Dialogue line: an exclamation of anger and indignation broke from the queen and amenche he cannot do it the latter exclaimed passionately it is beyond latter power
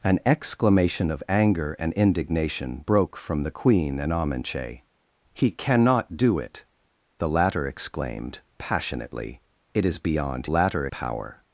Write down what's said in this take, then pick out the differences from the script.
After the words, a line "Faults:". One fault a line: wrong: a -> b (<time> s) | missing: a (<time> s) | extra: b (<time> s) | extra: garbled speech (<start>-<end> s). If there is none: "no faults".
an exclamation of anger and indignation broke from the queen and amenche he cannot do it the latter exclaimed passionately it is beyond latter power
Faults:
no faults